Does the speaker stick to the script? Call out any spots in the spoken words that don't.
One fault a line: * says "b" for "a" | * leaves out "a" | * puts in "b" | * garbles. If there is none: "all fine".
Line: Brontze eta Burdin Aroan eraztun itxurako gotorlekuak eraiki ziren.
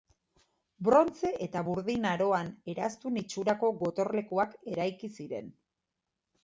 all fine